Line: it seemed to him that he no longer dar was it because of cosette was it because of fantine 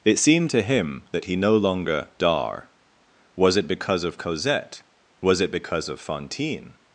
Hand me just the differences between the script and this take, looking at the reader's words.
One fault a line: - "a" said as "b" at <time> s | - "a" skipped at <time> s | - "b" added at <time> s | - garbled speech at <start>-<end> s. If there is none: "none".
none